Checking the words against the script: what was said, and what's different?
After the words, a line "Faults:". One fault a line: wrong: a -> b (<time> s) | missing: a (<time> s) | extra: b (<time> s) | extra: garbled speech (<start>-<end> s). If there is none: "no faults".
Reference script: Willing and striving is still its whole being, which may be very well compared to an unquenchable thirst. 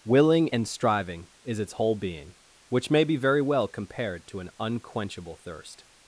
Willing and striving is its whole being, which may be very well compared to an unquenchable thirst.
Faults:
missing: still (1.6 s)